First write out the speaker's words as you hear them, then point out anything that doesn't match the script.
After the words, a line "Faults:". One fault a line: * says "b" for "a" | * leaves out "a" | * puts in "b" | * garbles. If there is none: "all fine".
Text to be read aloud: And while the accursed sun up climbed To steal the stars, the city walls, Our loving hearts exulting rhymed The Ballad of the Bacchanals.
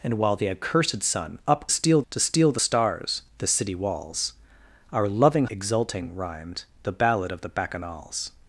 And while the accursed sun up steal To steal the stars, the city walls, Our loving exulting rhymed The Ballad of the Bacchanals.
Faults:
* says "steal" for "climbed"
* leaves out "hearts"